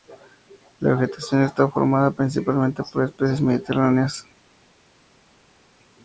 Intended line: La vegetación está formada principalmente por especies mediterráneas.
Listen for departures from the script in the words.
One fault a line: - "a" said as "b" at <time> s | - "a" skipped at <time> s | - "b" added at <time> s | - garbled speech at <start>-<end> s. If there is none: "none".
none